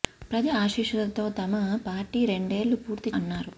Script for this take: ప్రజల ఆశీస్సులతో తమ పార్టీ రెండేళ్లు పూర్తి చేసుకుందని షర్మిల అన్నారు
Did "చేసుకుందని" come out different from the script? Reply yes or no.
yes